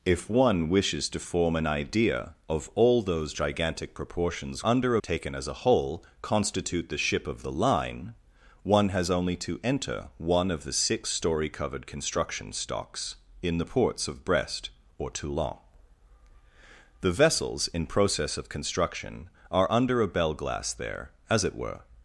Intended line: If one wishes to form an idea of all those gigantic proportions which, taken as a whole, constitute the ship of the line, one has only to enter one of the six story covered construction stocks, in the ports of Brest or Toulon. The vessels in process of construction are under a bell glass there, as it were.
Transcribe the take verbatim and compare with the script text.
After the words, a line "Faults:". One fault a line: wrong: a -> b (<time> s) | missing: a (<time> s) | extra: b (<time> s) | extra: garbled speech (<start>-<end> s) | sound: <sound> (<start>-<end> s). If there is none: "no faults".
If one wishes to form an idea of all those gigantic proportions under, taken as a whole, constitute the ship of the line, one has only to enter one of the six story covered construction stocks, in the ports of Brest or Toulon. The vessels in process of construction are under a bell glass there, as it were.
Faults:
wrong: which -> under (4.6 s)